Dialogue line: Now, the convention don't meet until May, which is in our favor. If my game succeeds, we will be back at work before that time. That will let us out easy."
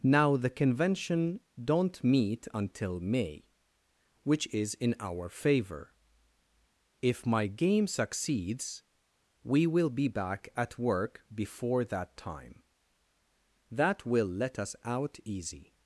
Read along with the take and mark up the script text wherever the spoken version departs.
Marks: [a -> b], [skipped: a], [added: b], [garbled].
Now, the convention don't meet until May, which is in our favor. If my game succeeds, we will be back at work before that time. That will let us out easy."